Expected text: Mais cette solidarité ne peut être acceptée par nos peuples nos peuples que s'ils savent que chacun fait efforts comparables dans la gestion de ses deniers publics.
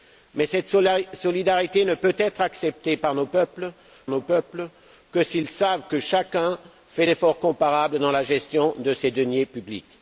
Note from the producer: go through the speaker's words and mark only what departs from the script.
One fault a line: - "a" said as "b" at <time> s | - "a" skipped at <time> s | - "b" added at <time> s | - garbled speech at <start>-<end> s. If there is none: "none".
none